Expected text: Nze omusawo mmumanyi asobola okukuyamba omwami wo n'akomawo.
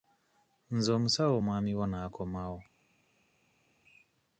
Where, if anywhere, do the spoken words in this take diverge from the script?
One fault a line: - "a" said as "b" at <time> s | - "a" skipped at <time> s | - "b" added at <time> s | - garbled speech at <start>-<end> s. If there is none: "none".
- "mmumanyi asobola okukuyamba" skipped at 1.4 s